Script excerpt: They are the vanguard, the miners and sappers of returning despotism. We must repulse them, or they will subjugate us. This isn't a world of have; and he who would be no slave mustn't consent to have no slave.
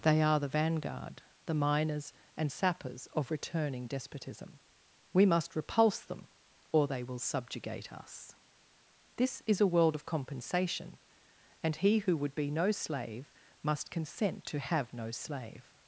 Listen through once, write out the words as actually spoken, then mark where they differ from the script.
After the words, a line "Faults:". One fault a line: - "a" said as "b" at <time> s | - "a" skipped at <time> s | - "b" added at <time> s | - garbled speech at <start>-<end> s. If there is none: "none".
They are the vanguard, the miners and sappers of returning despotism. We must repulse them, or they will subjugate us. This is a world of compensation; and he who would be no slave must consent to have no slave.
Faults:
- "isn't" said as "is" at 9.4 s
- "have" said as "compensation" at 10.0 s
- "mustn't" said as "must" at 13.6 s